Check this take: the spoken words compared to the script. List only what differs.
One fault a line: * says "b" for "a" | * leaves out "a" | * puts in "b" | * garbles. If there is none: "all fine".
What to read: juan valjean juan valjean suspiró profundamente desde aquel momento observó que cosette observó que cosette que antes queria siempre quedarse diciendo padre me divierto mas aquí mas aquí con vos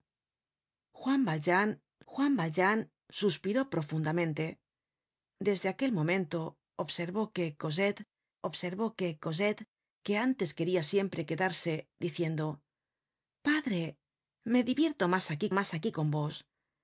all fine